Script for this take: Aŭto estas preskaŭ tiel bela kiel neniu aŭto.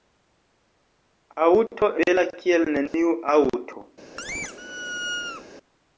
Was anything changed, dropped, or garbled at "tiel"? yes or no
yes